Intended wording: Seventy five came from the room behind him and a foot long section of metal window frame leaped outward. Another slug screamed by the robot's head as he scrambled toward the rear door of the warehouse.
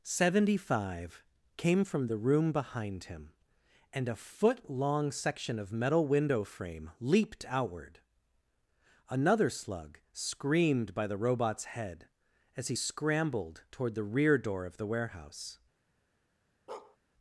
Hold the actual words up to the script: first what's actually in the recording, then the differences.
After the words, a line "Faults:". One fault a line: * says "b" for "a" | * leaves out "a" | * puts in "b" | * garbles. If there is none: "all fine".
Seventy five came from the room behind him and a foot long section of metal window frame leaped outward. Another slug screamed by the robot's head as he scrambled toward the rear door of the warehouse.
Faults:
all fine